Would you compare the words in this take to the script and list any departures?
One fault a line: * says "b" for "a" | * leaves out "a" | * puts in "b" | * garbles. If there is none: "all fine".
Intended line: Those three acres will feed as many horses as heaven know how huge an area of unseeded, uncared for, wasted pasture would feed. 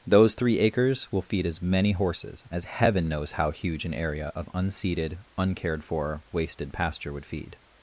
* says "knows" for "know"